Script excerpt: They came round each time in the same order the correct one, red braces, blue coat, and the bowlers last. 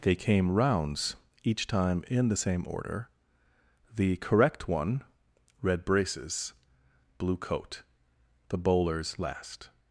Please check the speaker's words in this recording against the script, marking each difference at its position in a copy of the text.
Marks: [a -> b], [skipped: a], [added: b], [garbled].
They came [round -> rounds] each time in the same order the correct one, red braces, blue coat, [skipped: and] the bowlers last.